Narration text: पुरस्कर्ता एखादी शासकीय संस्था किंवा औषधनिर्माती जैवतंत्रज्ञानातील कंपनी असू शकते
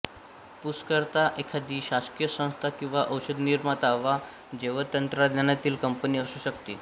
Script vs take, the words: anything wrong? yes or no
yes